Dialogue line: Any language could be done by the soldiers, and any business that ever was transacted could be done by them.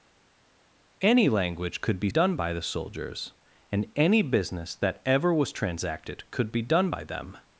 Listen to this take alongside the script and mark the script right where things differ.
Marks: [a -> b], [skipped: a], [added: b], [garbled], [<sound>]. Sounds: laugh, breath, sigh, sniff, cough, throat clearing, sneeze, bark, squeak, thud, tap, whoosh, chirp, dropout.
Any language could be done by the soldiers, and any business that ever was transacted could be done by them.